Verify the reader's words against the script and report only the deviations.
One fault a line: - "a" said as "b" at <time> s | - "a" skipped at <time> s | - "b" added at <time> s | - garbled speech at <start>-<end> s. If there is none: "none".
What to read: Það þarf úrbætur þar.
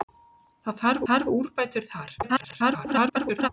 - "þarf" added at 1.1 s
- garbled speech at 2.2-3.5 s